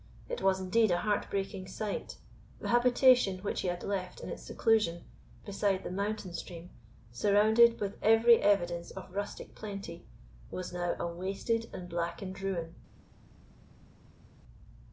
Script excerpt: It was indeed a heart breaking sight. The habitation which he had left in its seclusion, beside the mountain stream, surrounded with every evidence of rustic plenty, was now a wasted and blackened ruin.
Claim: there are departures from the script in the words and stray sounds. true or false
false